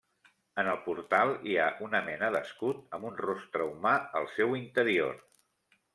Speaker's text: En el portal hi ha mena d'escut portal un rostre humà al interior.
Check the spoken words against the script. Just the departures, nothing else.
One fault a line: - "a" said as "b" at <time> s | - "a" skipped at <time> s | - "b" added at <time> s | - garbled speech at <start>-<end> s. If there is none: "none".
- "una" added at 1.9 s
- "portal" said as "amb" at 3.0 s
- "seu" added at 4.4 s